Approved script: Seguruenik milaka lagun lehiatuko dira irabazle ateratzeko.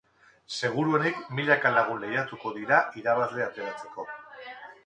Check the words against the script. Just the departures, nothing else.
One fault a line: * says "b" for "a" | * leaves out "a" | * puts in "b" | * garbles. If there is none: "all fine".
all fine